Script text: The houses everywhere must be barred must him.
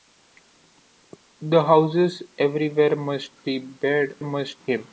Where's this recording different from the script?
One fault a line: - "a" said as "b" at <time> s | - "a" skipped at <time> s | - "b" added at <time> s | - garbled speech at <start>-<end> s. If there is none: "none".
none